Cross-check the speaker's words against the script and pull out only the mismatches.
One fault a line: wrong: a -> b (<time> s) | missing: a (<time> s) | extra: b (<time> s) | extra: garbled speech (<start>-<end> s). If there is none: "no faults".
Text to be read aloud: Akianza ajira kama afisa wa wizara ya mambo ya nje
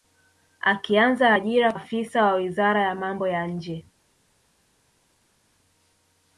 missing: kama (1.7 s)